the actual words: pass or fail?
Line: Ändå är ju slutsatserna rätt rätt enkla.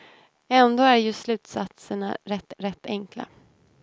pass